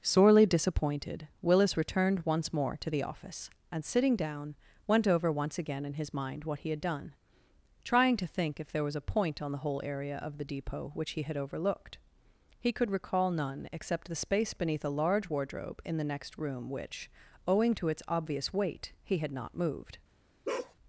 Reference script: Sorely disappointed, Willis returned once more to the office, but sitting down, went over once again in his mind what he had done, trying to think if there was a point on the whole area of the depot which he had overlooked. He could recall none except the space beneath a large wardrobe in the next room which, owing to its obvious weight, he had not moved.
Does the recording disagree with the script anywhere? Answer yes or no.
yes